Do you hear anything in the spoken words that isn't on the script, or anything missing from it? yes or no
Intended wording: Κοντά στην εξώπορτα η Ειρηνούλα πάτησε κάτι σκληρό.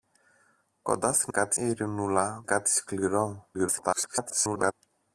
yes